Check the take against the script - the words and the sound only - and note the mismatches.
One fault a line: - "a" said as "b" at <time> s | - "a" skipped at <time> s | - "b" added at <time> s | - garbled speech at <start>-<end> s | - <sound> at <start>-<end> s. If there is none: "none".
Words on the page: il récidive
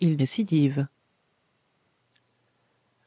none